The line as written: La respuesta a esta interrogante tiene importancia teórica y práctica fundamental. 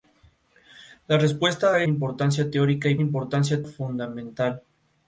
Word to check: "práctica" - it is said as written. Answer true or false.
false